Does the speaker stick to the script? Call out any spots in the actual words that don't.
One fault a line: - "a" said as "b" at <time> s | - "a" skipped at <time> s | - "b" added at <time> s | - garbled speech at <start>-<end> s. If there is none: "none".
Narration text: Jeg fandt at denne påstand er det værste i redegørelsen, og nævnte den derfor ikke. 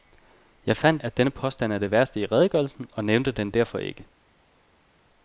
none